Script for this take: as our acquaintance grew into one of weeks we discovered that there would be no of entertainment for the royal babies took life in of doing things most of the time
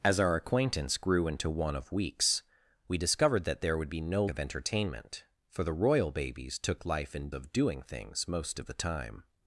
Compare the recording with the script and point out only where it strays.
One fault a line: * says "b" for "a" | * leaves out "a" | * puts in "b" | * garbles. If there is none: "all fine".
all fine